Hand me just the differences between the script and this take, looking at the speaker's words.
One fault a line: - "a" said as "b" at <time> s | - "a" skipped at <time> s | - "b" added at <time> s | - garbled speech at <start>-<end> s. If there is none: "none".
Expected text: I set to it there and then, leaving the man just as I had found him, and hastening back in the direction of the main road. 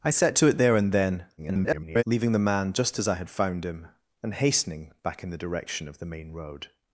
- garbled speech at 1.4-2.0 s